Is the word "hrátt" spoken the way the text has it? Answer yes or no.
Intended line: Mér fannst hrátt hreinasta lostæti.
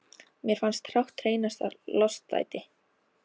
yes